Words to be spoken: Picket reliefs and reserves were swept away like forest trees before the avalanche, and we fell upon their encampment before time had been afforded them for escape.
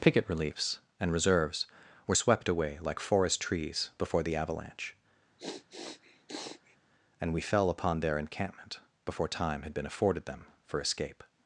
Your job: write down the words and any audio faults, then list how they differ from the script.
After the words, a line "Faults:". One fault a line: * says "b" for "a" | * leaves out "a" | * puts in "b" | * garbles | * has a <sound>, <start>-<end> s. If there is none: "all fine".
Picket reliefs and reserves were swept away like forest trees before the avalanche, and we fell upon their encampment before time had been afforded them for escape.
Faults:
* has a sniff, 5.4-6.8 s